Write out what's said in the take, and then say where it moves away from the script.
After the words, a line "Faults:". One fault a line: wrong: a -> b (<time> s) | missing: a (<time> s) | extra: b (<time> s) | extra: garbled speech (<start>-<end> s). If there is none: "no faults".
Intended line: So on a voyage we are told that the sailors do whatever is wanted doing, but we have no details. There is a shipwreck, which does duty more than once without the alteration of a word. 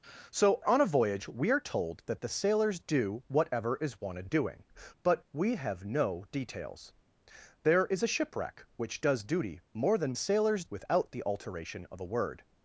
So on a voyage we are told that the sailors do whatever is wanted doing, but we have no details. There is a shipwreck, which does duty more than sailors without the alteration of a word.
Faults:
wrong: once -> sailors (10.1 s)